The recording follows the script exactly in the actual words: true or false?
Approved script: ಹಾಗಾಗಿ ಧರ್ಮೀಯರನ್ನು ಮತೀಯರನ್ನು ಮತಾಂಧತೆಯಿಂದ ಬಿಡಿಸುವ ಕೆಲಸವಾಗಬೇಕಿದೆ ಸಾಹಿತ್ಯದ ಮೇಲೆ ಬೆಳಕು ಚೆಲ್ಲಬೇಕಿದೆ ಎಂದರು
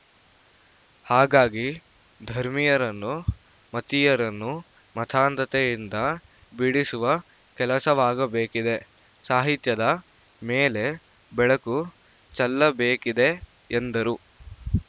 true